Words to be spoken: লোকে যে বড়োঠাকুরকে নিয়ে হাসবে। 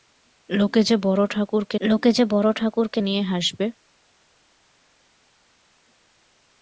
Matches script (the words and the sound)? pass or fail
fail